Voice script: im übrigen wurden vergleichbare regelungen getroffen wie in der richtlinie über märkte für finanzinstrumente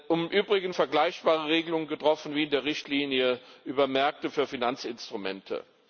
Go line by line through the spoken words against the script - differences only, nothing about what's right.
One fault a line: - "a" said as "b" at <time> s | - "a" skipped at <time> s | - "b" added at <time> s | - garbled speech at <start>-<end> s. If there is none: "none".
- "wurden" skipped at 0.8 s